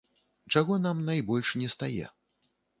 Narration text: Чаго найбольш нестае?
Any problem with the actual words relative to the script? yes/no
yes